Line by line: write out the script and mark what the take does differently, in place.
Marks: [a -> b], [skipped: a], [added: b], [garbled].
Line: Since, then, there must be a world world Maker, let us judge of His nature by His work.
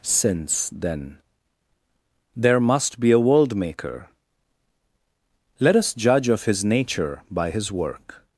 Since, then, there must be a world [skipped: world] Maker, let us judge of His nature by His work.